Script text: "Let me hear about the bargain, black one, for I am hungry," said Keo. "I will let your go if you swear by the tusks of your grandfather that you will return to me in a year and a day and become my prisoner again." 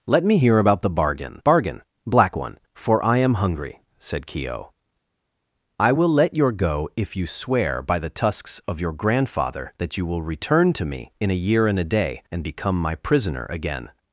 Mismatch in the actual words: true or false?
true